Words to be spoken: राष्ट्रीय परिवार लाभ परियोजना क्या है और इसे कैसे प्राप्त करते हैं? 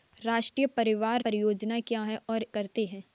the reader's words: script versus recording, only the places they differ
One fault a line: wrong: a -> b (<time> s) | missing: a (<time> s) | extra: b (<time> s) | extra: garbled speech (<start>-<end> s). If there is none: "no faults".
missing: लाभ (1.2 s)
missing: इसे कैसे प्राप्त (2.5 s)